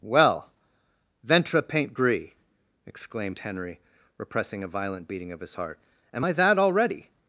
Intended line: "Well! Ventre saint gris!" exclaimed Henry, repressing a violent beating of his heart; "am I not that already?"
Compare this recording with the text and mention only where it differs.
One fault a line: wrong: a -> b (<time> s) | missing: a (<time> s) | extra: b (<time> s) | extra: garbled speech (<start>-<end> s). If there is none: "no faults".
wrong: saint -> paint (1.6 s)
missing: not (6.3 s)